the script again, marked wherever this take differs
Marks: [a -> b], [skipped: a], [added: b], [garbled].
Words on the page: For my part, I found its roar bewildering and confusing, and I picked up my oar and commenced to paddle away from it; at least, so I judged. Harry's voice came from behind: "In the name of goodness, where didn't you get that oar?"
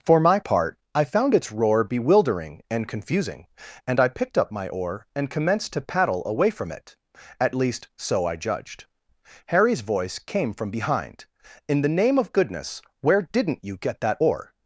For my part, I found its roar bewildering and confusing, and I picked up my oar and commenced to paddle away from it; at least, so I judged. Harry's voice came from behind: "In the name of goodness, where didn't you get that oar?"